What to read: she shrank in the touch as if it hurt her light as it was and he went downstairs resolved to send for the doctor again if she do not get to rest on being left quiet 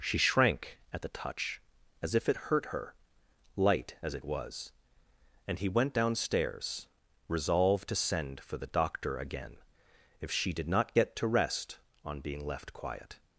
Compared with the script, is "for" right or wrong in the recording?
right